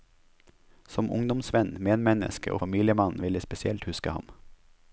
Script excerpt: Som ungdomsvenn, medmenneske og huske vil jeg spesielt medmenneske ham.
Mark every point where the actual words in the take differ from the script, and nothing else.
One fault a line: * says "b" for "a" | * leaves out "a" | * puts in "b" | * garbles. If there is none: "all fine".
* says "familiemann" for "huske"
* says "huske" for "medmenneske"